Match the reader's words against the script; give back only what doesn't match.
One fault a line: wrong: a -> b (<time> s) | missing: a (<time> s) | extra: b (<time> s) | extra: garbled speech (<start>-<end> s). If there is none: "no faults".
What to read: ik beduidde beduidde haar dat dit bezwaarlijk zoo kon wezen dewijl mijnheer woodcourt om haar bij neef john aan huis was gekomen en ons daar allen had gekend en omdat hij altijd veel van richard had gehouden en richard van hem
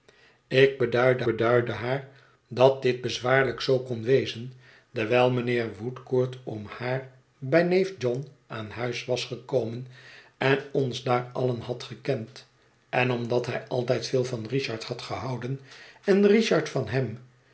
no faults